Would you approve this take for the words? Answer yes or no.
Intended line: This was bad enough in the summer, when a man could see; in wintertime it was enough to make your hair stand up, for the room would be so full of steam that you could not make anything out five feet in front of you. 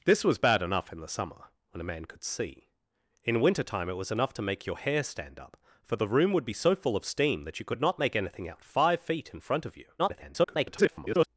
no